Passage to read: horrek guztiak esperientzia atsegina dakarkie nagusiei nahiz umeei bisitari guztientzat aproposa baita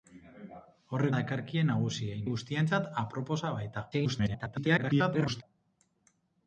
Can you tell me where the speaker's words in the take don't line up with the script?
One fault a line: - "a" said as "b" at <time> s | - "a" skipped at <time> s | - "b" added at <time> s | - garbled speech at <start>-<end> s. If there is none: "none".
- "guztiak esperientzia atsegina" skipped at 1.1 s
- "nahiz umeei bisitari" skipped at 2.2 s
- garbled speech at 3.9-5.4 s